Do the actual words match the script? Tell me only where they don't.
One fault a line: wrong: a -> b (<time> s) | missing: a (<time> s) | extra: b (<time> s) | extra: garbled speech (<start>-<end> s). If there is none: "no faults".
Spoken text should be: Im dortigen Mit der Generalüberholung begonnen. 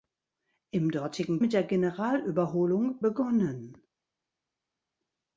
no faults